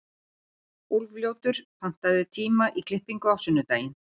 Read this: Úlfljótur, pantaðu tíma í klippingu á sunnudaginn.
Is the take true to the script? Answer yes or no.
yes